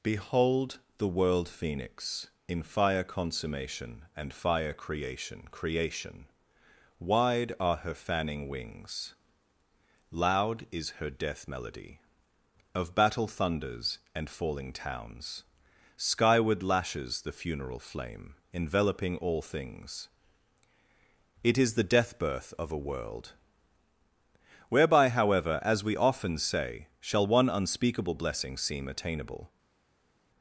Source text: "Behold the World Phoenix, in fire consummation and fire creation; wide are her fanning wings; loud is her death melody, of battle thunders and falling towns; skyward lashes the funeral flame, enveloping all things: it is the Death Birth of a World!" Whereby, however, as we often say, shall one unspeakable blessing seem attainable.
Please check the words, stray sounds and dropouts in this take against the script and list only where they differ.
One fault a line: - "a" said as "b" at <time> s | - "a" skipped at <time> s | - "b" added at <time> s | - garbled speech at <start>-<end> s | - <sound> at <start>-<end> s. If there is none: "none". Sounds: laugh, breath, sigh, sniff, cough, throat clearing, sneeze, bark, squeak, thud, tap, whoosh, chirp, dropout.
- "creation" added at 5.5 s